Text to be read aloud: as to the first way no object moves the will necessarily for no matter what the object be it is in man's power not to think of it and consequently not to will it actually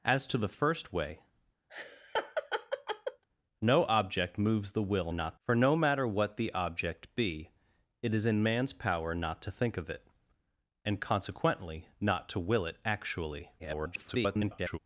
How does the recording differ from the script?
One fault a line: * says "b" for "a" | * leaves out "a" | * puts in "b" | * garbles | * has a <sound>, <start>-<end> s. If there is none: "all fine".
* has a laugh, 1.7-3.2 s
* says "not" for "necessarily"
* garbles